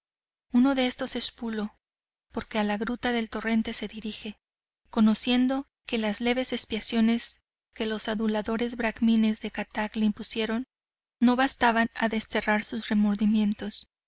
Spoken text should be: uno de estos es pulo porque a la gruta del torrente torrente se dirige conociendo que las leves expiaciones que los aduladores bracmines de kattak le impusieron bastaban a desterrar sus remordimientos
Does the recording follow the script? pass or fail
fail